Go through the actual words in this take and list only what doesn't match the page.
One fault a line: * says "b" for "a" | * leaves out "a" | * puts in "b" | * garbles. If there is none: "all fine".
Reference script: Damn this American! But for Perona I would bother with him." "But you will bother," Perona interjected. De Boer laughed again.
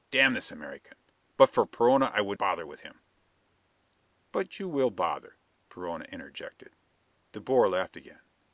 all fine